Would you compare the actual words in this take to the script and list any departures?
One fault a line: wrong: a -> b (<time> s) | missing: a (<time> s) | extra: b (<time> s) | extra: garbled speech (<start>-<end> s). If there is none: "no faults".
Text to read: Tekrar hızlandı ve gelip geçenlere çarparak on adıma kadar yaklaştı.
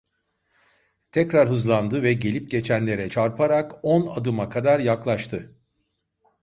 no faults